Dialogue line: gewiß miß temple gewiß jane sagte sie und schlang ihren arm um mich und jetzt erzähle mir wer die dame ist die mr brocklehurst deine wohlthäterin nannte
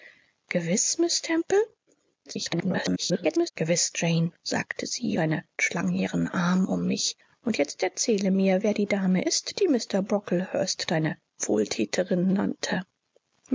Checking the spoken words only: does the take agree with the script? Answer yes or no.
no